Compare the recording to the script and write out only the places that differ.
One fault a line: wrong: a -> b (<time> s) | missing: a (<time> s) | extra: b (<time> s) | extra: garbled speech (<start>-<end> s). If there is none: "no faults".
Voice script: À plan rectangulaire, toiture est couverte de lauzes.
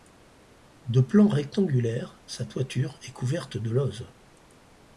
wrong: À -> De (0.8 s)
extra: sa (2.2 s)